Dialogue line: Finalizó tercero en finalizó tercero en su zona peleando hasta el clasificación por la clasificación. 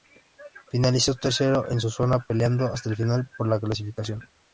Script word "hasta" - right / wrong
right